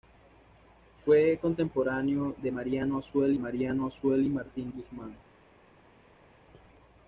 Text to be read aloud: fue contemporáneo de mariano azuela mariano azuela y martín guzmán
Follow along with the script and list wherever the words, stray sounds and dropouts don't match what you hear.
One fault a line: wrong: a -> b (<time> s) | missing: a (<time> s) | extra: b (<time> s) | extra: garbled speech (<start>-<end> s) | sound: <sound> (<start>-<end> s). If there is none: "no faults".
no faults